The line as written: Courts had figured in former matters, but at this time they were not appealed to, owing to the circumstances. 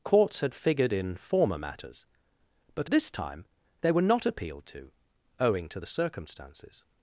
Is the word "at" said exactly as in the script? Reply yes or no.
no